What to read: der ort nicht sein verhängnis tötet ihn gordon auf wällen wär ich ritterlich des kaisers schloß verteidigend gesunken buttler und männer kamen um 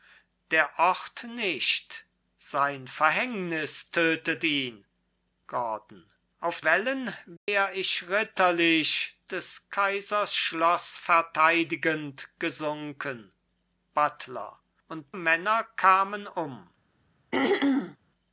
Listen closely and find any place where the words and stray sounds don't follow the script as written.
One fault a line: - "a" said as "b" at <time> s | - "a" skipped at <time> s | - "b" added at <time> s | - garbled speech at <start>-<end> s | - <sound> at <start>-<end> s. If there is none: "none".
- dropout at 7.4-7.5 s
- throat clearing at 17.3-18.0 s